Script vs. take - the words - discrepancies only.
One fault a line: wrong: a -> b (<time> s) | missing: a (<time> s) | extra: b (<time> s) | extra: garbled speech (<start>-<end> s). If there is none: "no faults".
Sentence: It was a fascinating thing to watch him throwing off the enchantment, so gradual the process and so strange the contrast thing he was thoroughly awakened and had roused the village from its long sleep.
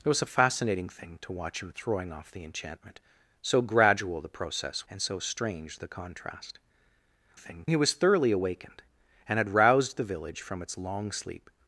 no faults